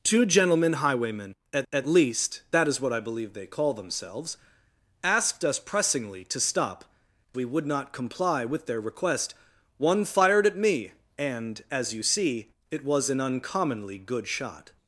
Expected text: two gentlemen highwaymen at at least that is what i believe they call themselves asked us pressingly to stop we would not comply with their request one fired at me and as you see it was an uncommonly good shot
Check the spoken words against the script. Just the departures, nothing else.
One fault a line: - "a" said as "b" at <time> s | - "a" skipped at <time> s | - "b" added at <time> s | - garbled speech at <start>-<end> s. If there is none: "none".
none